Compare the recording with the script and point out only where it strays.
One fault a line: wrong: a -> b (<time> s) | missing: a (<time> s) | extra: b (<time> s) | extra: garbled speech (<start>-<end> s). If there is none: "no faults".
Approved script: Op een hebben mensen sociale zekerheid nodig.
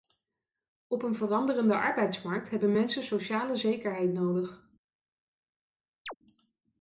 extra: veranderende arbeidsmarkt (1.1 s)